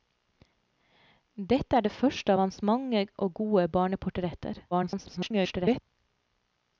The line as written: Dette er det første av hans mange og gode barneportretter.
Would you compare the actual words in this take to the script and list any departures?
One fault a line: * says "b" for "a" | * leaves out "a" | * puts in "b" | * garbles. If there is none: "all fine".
* garbles